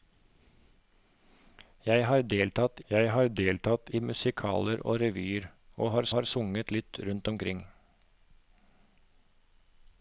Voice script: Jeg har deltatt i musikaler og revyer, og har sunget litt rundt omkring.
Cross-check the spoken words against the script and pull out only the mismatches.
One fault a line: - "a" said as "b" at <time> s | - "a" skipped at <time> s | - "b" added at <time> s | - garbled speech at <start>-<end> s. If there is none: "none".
- "jeg har deltatt" added at 2.9 s
- "har" added at 6.2 s